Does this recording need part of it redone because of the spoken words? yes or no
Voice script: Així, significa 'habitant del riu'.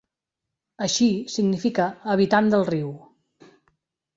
no